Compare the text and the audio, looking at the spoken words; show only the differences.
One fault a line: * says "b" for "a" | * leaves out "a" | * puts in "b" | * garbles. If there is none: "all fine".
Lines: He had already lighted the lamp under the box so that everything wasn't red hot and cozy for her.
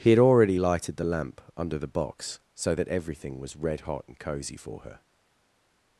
* says "was" for "wasn't"